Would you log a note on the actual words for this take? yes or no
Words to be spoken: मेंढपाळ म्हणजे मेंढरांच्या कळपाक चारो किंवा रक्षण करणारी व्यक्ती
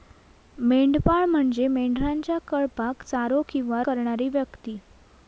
yes